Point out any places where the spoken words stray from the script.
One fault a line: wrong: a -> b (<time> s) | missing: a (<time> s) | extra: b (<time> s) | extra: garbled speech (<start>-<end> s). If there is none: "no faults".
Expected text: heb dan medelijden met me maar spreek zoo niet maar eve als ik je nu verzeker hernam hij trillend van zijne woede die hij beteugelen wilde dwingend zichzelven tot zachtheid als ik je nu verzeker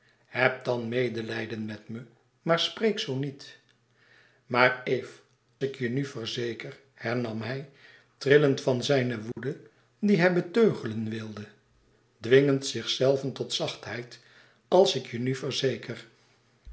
missing: als (5.1 s)